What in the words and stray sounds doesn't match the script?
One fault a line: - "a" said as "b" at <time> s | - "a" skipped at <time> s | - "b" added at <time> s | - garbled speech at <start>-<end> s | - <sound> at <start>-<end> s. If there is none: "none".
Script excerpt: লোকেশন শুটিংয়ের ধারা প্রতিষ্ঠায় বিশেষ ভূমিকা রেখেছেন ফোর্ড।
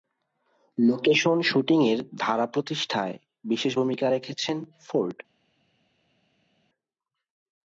none